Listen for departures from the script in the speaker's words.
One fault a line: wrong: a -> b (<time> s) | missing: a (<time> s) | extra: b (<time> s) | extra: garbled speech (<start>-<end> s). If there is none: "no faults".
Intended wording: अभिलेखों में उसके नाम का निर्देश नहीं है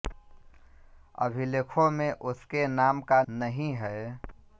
missing: निर्देश (3.2 s)